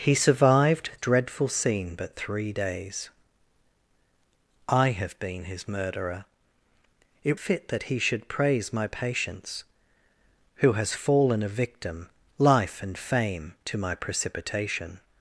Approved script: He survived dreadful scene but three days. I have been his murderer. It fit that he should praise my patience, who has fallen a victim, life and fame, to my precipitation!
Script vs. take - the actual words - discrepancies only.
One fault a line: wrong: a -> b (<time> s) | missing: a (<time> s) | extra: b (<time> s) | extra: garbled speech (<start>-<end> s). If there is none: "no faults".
no faults